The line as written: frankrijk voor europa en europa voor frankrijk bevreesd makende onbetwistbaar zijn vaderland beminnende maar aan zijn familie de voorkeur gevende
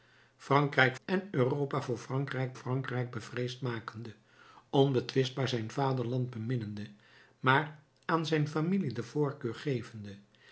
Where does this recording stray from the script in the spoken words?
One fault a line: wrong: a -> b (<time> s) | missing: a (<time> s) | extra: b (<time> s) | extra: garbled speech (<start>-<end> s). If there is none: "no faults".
missing: voor europa (0.9 s)
extra: frankrijk (2.5 s)